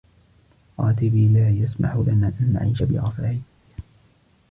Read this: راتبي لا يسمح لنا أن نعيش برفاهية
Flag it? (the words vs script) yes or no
no